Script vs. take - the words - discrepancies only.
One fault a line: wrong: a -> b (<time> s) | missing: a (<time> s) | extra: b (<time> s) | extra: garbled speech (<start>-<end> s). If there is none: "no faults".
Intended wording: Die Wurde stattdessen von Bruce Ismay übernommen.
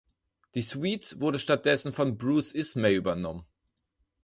extra: Suite (0.6 s)